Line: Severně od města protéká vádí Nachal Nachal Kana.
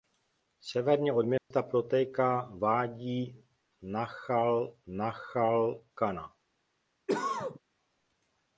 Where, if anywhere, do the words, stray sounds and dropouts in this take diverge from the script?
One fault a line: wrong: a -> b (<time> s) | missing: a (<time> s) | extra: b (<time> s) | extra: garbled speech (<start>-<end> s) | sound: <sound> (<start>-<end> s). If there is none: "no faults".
sound: dropout (1.4-1.5 s)
sound: cough (7.1-7.6 s)